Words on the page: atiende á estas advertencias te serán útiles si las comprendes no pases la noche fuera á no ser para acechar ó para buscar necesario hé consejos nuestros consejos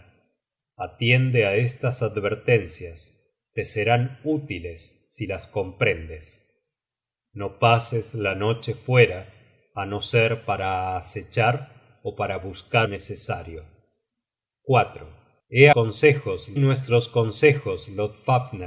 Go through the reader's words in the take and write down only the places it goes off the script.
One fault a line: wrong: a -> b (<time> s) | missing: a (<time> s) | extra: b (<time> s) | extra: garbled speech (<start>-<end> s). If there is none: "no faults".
no faults